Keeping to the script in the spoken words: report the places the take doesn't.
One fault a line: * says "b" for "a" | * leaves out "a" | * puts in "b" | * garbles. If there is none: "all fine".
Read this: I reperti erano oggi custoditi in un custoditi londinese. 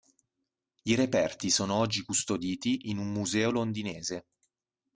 * says "sono" for "erano"
* says "museo" for "custoditi"